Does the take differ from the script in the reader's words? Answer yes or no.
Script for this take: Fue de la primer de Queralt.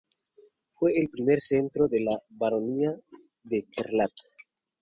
yes